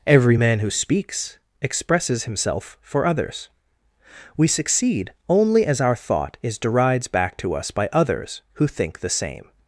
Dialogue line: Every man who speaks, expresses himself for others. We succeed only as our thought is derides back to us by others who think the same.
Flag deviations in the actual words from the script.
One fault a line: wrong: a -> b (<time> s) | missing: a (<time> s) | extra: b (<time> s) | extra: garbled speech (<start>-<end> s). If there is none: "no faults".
no faults